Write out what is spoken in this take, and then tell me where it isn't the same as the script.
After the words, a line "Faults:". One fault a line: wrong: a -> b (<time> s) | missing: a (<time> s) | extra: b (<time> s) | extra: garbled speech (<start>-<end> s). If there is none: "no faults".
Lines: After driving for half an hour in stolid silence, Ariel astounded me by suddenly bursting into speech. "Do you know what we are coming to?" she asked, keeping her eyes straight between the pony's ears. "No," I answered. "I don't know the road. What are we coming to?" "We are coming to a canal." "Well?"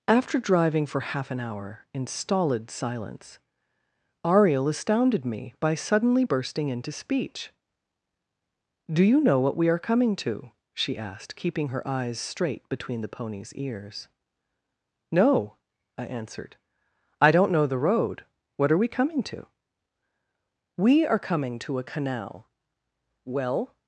After driving for half an hour in stolid silence, Ariel astounded me by suddenly bursting into speech. "Do you know what we are coming to?" she asked, keeping her eyes straight between the pony's ears. "No," I answered. "I don't know the road. What are we coming to?" "We are coming to a canal." "Well?"
Faults:
no faults